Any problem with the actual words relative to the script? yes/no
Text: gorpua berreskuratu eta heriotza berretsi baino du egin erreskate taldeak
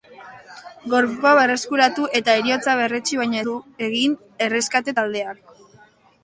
no